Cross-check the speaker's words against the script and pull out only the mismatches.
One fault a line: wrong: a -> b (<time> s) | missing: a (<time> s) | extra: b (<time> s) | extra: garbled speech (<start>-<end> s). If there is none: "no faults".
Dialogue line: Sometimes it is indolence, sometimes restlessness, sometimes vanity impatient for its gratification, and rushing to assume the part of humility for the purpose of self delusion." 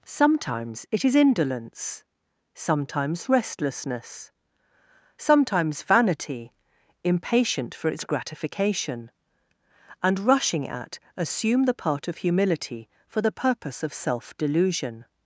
wrong: to -> at (10.7 s)